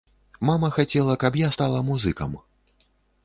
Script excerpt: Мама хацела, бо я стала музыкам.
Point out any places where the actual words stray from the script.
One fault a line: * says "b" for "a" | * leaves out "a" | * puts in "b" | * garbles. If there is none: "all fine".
* says "каб" for "бо"